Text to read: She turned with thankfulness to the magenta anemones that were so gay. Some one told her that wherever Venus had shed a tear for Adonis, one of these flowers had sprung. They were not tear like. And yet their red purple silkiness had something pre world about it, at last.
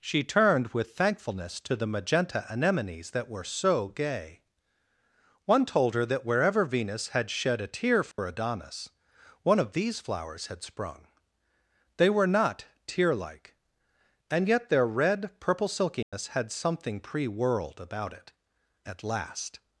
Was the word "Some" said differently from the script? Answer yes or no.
yes